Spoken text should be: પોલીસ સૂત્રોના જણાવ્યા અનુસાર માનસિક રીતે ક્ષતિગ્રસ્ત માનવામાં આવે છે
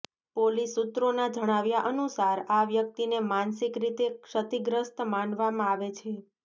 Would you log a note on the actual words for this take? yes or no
yes